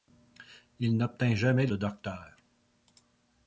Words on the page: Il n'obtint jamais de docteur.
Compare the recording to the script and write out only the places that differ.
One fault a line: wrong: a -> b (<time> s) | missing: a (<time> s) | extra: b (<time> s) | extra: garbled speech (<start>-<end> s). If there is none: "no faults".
no faults